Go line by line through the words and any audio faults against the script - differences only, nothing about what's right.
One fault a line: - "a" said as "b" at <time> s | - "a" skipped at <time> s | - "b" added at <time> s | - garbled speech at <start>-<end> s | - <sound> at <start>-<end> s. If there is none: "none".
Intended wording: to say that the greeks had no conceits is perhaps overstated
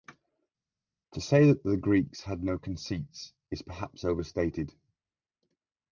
none